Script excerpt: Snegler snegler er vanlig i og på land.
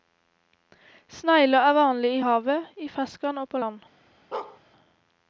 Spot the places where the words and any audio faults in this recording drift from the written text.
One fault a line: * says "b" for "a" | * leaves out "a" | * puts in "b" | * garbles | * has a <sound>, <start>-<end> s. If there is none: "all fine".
* leaves out "snegler"
* puts in "havet i ferskvann"
* has a bark, 4.3-4.6 s